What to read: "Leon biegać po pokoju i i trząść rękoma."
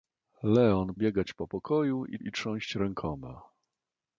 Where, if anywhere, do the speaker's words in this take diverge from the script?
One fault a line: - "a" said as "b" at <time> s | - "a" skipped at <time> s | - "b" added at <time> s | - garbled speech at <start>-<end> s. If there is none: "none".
none